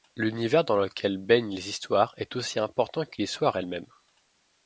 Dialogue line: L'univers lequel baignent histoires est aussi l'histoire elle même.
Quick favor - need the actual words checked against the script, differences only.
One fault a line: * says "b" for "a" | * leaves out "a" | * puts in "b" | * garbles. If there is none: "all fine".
* puts in "dans"
* puts in "les"
* puts in "important que"